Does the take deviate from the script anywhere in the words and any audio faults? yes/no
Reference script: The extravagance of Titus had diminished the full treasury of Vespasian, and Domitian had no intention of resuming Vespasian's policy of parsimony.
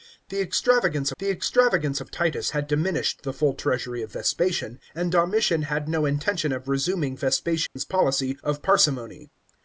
yes